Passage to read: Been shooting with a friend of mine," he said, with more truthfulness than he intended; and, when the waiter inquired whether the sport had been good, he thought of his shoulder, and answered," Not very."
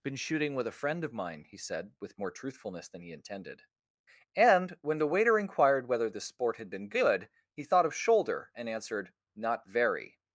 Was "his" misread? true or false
true